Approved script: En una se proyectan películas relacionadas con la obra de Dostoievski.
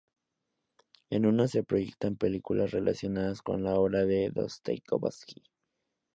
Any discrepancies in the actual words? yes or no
no